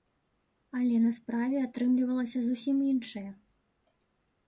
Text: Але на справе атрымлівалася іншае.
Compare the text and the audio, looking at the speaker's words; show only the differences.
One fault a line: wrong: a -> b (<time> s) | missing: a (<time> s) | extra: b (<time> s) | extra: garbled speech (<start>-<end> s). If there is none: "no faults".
extra: зусім (2.5 s)